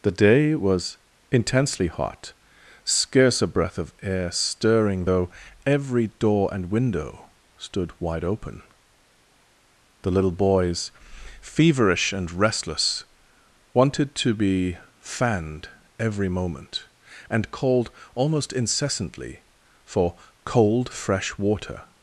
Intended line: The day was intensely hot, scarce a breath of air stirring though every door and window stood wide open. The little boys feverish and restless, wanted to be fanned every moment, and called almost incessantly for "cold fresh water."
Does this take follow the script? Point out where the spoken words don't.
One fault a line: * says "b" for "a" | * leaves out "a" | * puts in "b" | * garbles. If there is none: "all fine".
all fine